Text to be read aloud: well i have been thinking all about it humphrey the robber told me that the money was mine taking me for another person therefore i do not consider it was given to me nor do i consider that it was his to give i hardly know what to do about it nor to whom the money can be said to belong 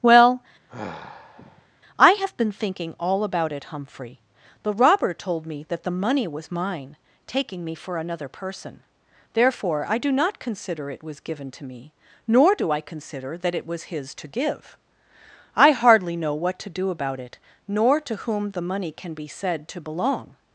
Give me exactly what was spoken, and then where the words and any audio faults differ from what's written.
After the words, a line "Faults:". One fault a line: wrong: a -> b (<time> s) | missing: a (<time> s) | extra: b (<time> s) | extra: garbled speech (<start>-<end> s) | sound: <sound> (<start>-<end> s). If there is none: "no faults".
well i have been thinking all about it humphrey the robber told me that the money was mine taking me for another person therefore i do not consider it was given to me nor do i consider that it was his to give i hardly know what to do about it nor to whom the money can be said to belong
Faults:
sound: sigh (0.7-1.7 s)